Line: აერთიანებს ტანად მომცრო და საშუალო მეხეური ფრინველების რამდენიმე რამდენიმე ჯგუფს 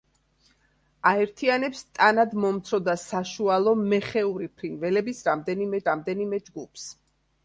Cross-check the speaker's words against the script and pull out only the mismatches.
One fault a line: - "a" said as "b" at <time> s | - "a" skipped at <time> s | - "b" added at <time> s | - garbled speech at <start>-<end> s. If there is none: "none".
none